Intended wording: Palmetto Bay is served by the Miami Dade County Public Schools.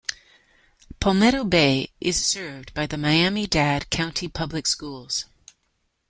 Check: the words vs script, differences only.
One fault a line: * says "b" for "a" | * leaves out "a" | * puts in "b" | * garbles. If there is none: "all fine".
all fine